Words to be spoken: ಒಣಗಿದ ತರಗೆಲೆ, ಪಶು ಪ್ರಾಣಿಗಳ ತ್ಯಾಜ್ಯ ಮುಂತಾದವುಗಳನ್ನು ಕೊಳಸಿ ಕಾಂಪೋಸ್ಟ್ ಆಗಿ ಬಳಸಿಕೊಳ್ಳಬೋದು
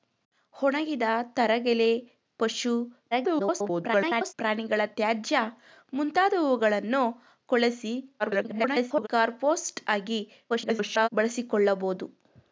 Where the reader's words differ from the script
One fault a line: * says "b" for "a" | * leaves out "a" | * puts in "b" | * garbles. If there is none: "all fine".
* garbles
* garbles
* garbles